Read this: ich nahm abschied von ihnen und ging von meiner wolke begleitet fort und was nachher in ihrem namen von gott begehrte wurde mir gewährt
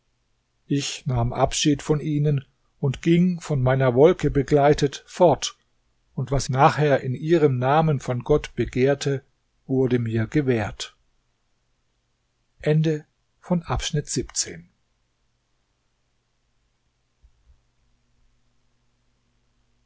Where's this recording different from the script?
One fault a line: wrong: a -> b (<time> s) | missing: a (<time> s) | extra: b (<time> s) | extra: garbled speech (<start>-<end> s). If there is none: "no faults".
no faults